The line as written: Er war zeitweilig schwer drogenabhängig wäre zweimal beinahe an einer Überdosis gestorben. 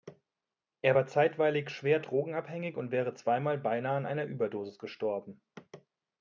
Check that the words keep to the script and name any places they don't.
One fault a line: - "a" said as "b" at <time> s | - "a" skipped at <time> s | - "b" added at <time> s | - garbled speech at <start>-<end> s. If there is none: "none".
- "und" added at 2.8 s